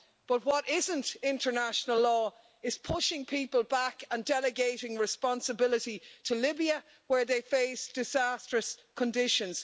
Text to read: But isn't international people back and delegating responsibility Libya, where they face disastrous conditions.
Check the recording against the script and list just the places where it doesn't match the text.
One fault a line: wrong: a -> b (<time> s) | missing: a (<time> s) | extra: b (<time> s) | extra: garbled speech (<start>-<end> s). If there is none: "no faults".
extra: what (0.5 s)
extra: law is pushing (2.0 s)
extra: to (6.2 s)